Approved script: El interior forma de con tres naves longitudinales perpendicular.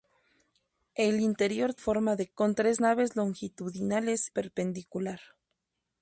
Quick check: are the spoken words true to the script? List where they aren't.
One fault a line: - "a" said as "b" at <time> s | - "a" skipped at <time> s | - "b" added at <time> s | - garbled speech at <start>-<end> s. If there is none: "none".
none